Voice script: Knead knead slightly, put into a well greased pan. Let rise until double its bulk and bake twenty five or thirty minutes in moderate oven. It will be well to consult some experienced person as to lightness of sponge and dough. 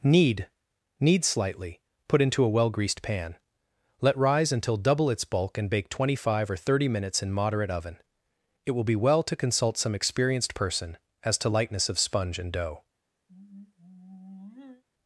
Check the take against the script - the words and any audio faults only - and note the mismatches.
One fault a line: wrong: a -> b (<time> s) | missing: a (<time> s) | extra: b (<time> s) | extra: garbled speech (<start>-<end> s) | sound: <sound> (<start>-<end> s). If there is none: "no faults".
sound: sigh (13.3-14.8 s)